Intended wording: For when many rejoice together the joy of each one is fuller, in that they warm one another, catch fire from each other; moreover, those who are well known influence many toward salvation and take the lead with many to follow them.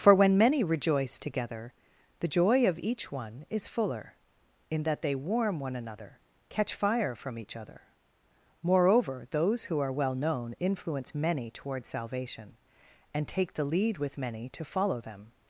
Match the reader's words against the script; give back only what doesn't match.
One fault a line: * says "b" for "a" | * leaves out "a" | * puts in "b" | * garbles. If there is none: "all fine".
all fine